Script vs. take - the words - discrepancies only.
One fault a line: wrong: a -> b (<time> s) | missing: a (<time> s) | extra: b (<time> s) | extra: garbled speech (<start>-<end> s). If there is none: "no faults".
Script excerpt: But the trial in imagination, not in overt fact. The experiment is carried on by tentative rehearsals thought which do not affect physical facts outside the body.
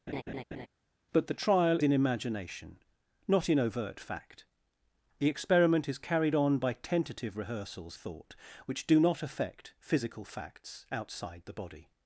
no faults